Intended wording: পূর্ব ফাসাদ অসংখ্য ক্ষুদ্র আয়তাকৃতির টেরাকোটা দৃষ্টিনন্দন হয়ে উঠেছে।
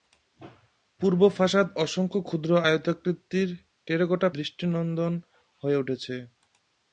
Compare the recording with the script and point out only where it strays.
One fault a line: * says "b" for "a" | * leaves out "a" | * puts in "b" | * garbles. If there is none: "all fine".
all fine